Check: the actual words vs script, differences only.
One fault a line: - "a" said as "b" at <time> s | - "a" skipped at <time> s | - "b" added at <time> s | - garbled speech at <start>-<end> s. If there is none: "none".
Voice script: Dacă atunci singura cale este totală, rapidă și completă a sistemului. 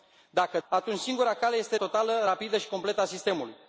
none